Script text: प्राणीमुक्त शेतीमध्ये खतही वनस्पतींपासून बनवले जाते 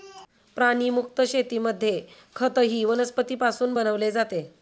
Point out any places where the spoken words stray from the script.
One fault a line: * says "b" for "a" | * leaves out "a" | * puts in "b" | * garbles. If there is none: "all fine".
all fine